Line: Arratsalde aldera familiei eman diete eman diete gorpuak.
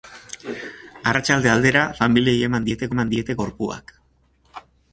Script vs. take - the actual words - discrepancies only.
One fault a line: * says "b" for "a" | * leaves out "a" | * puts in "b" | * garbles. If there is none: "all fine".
all fine